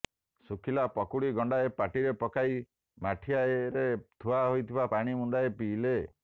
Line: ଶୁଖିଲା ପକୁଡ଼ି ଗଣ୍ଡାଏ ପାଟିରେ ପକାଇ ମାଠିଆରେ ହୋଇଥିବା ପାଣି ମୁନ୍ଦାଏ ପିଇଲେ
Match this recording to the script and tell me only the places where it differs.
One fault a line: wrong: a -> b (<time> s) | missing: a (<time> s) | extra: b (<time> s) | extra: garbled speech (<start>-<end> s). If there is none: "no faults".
extra: ଥୁଆ (4.2 s)